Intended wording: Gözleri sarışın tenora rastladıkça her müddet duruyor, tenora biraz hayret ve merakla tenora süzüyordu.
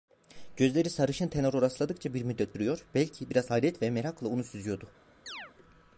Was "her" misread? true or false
true